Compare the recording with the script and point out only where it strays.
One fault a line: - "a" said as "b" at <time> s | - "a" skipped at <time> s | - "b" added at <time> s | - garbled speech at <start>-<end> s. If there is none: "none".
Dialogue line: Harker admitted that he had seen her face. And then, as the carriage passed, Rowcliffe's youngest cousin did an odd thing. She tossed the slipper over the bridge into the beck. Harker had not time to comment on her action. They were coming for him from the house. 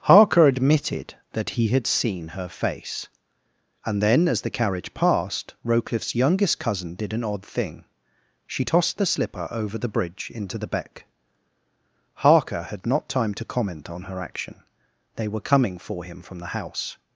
none